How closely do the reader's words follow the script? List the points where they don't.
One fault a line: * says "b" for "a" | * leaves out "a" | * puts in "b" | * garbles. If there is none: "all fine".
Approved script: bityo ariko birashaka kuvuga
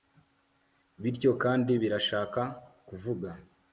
* says "kandi" for "ariko"